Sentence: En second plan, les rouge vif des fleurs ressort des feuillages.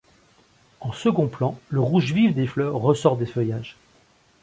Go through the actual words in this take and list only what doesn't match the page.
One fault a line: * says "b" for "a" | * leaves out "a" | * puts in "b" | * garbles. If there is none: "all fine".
* says "le" for "les"